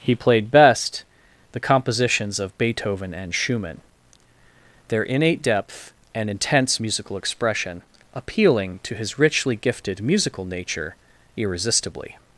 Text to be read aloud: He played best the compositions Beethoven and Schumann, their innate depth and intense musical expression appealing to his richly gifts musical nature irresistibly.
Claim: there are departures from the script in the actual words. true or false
true